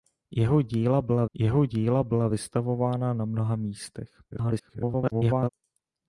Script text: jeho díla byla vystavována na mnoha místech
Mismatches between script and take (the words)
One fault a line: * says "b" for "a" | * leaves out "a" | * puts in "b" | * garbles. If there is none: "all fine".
* puts in "jeho díla byla"
* garbles